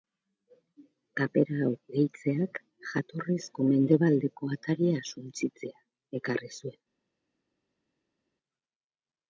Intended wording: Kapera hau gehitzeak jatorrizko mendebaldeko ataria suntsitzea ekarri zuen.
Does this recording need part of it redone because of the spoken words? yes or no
no